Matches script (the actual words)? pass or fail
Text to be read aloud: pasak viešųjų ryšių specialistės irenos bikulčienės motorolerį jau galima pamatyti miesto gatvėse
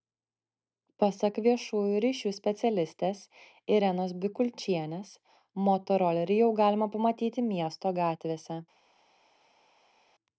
pass